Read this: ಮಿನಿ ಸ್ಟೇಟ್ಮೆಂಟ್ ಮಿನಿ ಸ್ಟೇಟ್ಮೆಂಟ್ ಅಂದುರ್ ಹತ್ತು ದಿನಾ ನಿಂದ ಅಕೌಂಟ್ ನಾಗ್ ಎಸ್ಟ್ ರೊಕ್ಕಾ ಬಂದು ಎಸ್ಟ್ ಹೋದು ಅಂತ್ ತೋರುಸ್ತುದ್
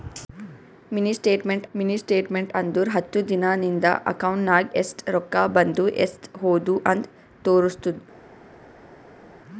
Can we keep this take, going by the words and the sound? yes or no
yes